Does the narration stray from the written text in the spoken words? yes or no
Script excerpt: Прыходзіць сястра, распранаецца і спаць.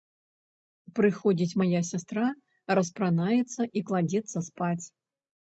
yes